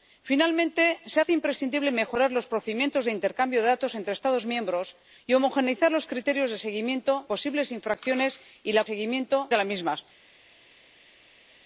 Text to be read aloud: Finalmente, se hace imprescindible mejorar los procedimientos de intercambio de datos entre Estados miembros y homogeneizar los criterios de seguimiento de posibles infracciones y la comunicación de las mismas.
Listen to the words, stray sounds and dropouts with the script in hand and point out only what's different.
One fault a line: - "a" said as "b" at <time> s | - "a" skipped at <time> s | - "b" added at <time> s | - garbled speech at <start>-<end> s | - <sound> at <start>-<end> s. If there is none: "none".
- "de" skipped at 7.2 s
- "comunicación" said as "seguimiento" at 8.8 s